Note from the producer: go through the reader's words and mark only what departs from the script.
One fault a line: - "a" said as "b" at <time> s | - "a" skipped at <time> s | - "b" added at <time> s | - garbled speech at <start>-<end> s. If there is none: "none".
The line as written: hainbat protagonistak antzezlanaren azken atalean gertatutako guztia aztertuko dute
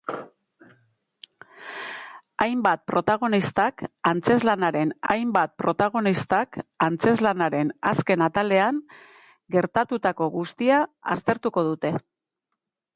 - "hainbat protagonistak antzezlanaren" added at 5.1 s